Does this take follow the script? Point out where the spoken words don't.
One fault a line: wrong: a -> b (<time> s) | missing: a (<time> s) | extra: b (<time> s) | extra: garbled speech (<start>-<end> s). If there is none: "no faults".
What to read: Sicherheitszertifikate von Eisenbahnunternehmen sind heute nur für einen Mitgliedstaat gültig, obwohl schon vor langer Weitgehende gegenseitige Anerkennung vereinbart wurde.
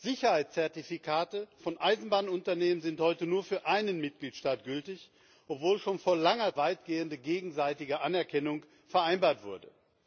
no faults